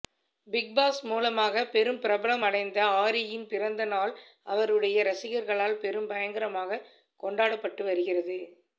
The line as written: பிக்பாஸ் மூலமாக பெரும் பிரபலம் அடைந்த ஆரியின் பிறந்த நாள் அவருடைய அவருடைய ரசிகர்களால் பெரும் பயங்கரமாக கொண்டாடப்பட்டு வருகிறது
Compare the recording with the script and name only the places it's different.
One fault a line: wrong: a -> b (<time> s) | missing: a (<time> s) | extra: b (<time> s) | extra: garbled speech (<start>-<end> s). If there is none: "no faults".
missing: அவருடைய (5.0 s)